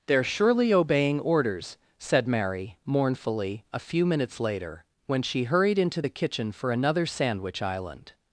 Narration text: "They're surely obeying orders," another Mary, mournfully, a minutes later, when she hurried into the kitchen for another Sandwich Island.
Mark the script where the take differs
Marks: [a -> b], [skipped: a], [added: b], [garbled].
"They're surely obeying orders," [another -> said] Mary, mournfully, a [added: few] minutes later, when she hurried into the kitchen for another Sandwich Island.